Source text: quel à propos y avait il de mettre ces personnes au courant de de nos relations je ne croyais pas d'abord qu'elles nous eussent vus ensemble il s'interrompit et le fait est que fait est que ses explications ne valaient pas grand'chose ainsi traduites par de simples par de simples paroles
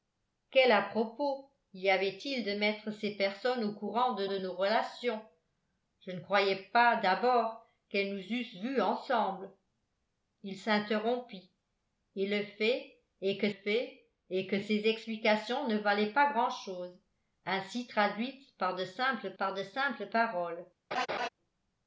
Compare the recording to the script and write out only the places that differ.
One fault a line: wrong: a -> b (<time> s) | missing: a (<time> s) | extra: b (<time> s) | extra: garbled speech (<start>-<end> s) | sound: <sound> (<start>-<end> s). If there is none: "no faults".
sound: laugh (20.9-21.3 s)